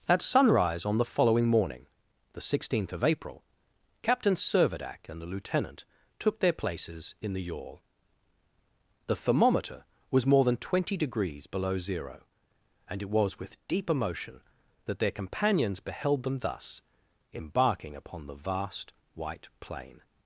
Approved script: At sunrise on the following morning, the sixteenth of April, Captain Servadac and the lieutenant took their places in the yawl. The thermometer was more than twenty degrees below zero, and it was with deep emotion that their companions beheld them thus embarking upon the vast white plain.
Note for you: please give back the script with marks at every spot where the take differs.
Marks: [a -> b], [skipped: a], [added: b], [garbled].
At sunrise on the following morning, the sixteenth of April, Captain Servadac and the lieutenant took their places in the yawl. The thermometer was more than twenty degrees below zero, and it was with deep emotion that their companions beheld them thus embarking upon the vast white plain.